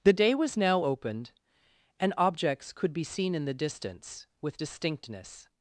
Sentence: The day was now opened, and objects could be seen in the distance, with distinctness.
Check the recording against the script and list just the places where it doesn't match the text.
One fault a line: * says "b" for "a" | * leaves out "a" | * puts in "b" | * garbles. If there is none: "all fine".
all fine